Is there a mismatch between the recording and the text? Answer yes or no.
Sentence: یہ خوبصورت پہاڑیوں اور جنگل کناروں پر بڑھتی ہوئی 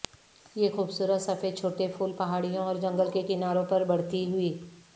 yes